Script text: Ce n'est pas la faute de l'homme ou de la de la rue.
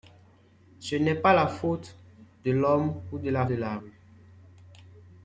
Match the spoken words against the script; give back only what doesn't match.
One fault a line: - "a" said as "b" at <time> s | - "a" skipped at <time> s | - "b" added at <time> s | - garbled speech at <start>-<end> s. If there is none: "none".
none